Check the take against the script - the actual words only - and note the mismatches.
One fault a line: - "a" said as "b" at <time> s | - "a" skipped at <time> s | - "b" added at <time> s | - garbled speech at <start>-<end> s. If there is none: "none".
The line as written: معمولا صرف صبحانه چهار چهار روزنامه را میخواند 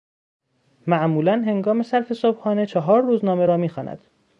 - "هنگام" added at 1.3 s
- "چهار" skipped at 3.0 s